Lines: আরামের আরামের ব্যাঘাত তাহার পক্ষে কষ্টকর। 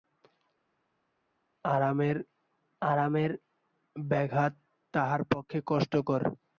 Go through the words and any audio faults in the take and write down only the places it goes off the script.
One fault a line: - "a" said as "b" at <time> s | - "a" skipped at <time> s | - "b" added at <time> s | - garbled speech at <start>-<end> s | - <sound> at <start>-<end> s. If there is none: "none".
none